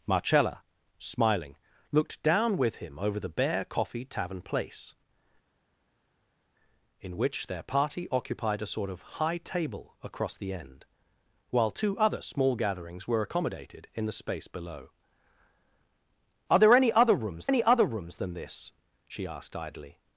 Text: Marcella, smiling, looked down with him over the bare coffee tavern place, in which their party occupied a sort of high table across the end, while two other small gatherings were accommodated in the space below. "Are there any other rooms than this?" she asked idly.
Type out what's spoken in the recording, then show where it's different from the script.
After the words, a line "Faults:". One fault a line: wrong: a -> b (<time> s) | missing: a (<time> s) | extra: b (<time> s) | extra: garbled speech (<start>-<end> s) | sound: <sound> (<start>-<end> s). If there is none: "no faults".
Marcella, smiling, looked down with him over the bare coffee tavern place, in which their party occupied a sort of high table across the end, while two other small gatherings were accommodated in the space below. "Are there any other rooms any other rooms than this?" she asked idly.
Faults:
extra: any other rooms (17.5 s)